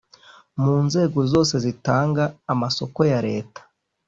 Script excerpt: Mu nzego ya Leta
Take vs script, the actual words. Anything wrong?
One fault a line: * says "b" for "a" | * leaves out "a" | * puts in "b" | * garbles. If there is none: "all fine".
* puts in "zose zitanga amasoko"